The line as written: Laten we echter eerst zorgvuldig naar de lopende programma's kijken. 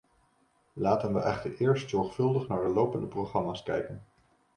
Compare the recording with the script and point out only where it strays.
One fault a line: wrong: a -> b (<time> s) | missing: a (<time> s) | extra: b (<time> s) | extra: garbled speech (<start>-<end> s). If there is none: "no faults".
no faults